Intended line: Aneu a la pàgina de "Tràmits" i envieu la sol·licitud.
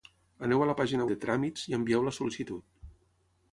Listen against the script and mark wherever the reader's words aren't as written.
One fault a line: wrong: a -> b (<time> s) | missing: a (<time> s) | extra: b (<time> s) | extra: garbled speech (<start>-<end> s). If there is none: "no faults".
no faults